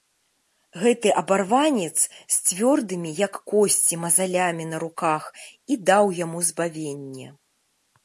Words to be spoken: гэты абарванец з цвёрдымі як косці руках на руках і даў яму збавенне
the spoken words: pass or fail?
fail